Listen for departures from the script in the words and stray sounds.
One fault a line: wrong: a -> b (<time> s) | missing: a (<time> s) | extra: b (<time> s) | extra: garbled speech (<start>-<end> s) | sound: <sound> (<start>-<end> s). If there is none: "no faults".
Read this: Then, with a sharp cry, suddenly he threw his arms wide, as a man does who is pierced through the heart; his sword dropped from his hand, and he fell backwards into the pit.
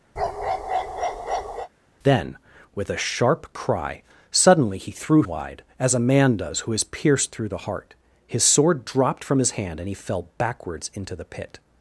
sound: bark (0.2-1.7 s)
missing: his arms (5.2 s)